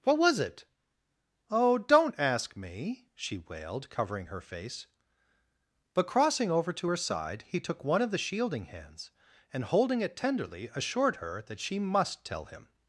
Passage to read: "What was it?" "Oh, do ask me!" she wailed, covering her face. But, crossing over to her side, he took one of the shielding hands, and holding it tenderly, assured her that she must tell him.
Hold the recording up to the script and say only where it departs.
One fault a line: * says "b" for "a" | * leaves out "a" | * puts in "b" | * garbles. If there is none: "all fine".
* says "don't" for "do"